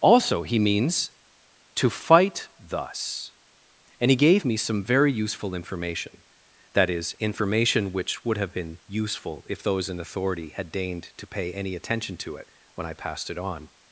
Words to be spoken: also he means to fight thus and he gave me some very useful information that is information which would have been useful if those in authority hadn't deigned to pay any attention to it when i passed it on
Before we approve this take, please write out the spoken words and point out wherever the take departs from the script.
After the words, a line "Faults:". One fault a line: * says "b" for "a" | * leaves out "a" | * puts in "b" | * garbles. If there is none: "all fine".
also he means to fight thus and he gave me some very useful information that is information which would have been useful if those in authority had deigned to pay any attention to it when i passed it on
Faults:
* says "had" for "hadn't"